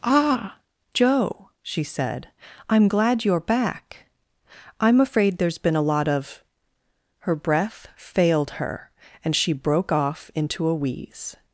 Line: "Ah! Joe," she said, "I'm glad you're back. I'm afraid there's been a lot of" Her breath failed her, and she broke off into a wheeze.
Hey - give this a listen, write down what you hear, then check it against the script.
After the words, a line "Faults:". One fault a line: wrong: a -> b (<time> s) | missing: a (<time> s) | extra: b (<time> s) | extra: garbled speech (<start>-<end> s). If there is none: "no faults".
"Ah! Joe," she said, "I'm glad you're back. I'm afraid there's been a lot of" Her breath failed her, and she broke off into a wheeze.
Faults:
no faults